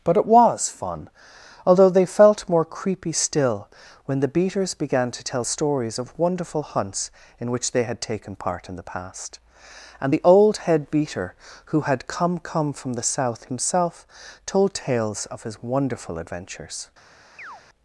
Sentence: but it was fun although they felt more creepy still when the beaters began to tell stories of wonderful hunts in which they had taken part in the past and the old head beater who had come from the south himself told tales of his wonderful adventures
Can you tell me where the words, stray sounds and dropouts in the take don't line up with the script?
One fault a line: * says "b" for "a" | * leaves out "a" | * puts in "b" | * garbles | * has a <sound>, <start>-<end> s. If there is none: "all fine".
* puts in "come"
* has a chirp, 17.4-17.6 s